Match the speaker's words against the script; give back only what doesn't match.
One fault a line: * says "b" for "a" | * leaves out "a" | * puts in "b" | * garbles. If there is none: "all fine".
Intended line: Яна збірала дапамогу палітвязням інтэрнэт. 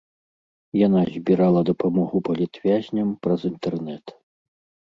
* puts in "праз"